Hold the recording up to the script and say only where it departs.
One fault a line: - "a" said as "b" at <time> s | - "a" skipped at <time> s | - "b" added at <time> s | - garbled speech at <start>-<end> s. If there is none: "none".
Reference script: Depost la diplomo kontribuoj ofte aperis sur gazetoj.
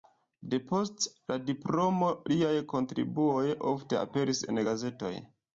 - "liaj" added at 2.3 s
- "sur" said as "en" at 4.5 s